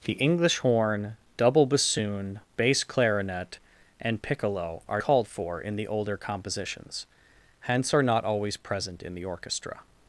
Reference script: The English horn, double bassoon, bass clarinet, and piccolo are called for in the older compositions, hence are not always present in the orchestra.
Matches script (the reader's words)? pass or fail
pass